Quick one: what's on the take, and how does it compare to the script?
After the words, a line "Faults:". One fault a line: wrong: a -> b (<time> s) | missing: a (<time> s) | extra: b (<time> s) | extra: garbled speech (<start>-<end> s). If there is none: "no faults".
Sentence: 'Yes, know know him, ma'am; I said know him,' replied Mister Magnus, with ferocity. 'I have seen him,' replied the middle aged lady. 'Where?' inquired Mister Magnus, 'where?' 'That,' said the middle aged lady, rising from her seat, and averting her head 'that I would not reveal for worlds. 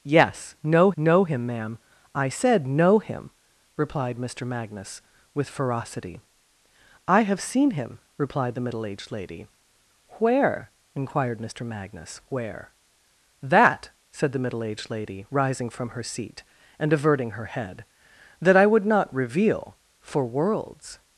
'Yes, know know him, ma'am; I said know him,' replied Mister Magnus, with ferocity. 'I have seen him,' replied the middle aged lady. 'Where?' inquired Mister Magnus, 'where?' 'That,' said the middle aged lady, rising from her seat, and averting her head 'that I would not reveal for worlds.
Faults:
no faults